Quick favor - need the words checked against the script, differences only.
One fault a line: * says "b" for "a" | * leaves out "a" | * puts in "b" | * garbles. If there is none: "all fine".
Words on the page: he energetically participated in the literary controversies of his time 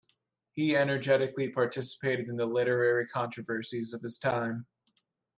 all fine